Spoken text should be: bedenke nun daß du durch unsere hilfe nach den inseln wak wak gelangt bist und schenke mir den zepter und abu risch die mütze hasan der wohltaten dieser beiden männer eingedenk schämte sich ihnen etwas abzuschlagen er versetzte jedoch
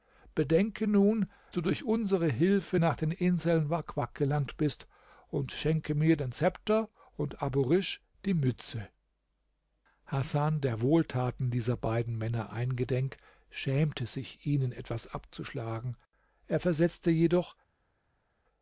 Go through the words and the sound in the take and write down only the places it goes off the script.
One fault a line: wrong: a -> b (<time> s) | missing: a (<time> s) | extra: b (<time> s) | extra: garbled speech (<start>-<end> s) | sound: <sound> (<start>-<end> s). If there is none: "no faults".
missing: daß (1.3 s)